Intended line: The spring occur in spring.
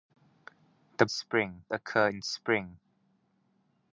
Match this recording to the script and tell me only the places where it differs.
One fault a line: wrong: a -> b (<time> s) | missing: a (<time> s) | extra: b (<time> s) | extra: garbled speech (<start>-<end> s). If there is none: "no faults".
no faults